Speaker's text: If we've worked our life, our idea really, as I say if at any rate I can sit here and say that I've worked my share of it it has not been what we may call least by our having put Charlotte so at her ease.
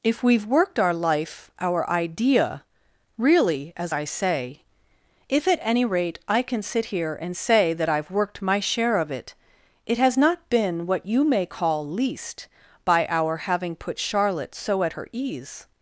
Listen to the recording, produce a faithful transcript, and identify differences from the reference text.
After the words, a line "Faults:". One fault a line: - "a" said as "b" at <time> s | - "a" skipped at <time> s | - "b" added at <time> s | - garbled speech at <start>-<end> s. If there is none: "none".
If we've worked our life, our idea really, as I say if at any rate I can sit here and say that I've worked my share of it it has not been what you may call least by our having put Charlotte so at her ease.
Faults:
- "we" said as "you" at 11.1 s